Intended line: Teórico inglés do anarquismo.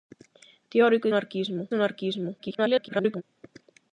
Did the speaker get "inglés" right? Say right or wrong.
wrong